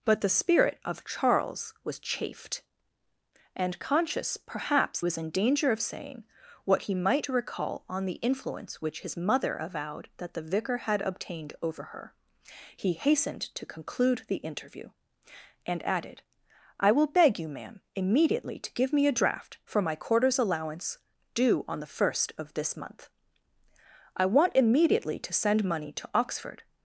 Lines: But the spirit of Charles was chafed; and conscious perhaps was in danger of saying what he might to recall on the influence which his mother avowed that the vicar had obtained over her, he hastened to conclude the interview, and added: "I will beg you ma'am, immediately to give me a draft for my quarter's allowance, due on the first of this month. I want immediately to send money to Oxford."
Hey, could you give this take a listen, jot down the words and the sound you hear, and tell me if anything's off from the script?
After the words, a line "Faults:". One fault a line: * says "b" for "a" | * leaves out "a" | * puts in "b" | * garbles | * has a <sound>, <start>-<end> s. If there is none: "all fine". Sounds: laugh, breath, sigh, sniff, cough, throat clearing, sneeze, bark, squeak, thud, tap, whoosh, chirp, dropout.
But the spirit of Charles was chafed; and conscious perhaps was in danger of saying what he might to recall on the influence which his mother avowed that the vicar had obtained over her, he hastened to conclude the interview, and added: "I will beg you ma'am, immediately to give me a draft for my quarter's allowance, due on the first of this month. I want immediately to send money to Oxford."
Faults:
all fine